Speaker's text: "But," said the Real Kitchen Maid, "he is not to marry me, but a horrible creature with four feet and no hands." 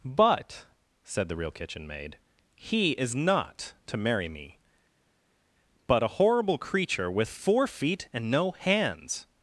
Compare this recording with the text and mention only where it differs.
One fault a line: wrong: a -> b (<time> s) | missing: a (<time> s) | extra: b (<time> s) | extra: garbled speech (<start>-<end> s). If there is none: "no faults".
no faults